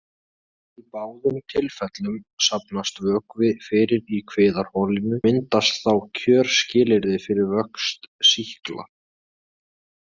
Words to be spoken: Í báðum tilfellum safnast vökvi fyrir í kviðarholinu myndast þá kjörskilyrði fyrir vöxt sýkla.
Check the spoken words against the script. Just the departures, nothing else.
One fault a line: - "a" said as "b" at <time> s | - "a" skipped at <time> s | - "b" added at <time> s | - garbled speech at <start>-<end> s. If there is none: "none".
none